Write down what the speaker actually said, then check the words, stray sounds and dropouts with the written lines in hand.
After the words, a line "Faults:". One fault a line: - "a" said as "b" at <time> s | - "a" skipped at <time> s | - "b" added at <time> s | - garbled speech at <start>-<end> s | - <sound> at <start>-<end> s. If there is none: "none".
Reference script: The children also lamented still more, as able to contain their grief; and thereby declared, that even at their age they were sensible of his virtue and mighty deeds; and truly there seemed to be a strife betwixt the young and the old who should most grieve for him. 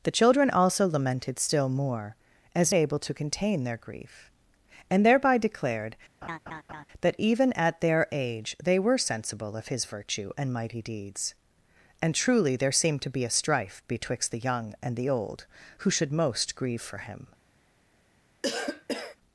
The children also lamented still more, as able to contain their grief; and thereby declared, that even at their age they were sensible of his virtue and mighty deeds; and truly there seemed to be a strife betwixt the young and the old who should most grieve for him.
Faults:
- laugh at 6.2-6.9 s
- cough at 18.4-19.2 s